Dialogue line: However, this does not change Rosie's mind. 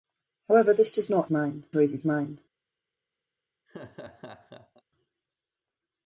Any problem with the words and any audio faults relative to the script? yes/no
yes